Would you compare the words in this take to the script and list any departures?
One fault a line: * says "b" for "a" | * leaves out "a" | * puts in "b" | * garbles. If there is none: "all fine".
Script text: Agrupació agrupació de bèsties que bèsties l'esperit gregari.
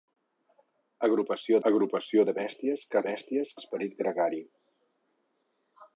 all fine